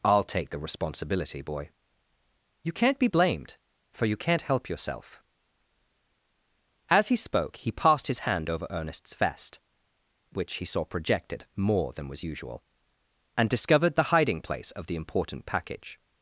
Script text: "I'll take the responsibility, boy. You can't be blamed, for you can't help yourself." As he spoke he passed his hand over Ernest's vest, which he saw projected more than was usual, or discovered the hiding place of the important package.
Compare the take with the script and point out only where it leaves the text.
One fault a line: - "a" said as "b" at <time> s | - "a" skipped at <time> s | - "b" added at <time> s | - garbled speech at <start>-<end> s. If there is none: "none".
- "or" said as "and" at 13.4 s